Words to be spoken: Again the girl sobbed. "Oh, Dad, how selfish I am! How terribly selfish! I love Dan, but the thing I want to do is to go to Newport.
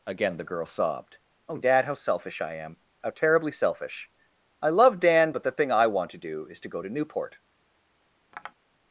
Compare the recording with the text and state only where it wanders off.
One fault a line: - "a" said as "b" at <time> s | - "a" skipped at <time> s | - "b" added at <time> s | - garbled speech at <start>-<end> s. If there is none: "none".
none